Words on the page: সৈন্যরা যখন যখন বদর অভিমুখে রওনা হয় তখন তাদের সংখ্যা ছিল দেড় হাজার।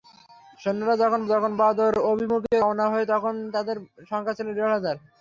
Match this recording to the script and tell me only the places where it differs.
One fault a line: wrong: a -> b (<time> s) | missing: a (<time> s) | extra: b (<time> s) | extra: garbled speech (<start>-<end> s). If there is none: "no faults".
no faults